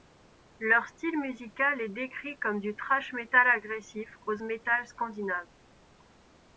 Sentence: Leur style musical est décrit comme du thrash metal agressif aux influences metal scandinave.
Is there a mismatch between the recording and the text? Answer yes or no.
yes